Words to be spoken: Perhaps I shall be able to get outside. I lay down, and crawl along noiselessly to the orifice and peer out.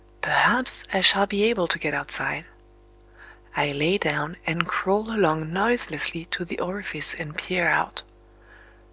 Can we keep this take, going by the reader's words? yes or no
yes